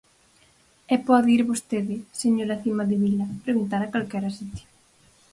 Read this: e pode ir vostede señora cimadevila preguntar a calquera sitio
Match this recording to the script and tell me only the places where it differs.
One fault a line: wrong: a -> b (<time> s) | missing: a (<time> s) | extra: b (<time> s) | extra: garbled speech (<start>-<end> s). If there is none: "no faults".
no faults